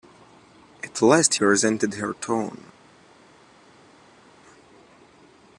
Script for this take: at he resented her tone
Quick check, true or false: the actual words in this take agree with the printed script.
false